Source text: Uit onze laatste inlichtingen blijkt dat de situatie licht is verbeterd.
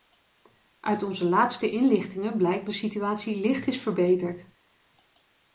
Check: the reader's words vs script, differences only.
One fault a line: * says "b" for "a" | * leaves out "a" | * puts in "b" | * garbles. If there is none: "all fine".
* leaves out "dat"